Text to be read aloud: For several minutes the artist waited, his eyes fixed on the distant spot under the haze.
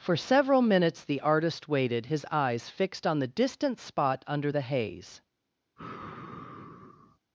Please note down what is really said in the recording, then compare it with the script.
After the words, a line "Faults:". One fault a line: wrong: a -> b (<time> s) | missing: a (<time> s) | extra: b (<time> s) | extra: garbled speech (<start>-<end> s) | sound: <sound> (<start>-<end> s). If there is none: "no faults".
For several minutes the artist waited, his eyes fixed on the distant spot under the haze.
Faults:
sound: sigh (5.8-7.2 s)